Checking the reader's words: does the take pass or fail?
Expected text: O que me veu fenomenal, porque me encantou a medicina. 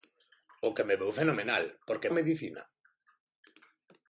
fail